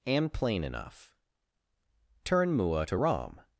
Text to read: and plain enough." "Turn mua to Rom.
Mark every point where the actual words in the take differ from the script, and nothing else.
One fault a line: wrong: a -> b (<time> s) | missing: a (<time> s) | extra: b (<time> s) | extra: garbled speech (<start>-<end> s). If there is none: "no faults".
no faults